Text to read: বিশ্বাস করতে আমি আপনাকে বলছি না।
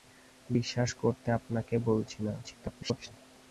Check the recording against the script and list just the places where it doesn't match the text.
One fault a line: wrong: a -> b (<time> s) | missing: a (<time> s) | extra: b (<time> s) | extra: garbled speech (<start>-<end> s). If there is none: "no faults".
missing: আমি (1.3 s)
extra: garbled speech (2.4-3.1 s)